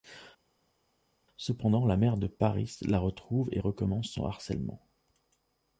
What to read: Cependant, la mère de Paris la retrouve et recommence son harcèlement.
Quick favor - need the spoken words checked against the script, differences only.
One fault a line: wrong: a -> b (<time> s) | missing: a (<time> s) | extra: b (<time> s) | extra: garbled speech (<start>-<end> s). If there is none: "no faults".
no faults